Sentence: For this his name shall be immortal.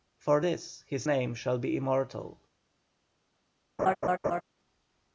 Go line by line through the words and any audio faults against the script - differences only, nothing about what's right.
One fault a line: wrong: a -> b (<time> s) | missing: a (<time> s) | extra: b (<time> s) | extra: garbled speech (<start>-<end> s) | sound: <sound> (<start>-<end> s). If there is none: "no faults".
sound: laugh (3.8-4.4 s)